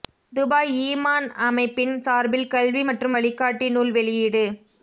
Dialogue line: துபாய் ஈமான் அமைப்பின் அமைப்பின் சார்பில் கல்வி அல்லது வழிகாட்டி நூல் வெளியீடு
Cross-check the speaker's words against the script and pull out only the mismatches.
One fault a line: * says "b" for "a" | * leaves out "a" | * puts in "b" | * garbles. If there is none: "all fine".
* leaves out "அமைப்பின்"
* says "மற்றும்" for "அல்லது"